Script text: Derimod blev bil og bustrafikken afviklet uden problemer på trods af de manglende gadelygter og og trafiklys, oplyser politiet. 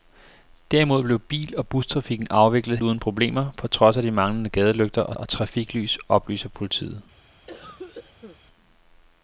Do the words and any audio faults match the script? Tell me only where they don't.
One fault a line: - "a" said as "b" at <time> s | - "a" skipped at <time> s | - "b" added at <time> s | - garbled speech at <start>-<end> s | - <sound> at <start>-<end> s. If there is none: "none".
- cough at 7.5-8.4 s